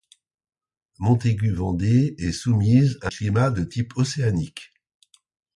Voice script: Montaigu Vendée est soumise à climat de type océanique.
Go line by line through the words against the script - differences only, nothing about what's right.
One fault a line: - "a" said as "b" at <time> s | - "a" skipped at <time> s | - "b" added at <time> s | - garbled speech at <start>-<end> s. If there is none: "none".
none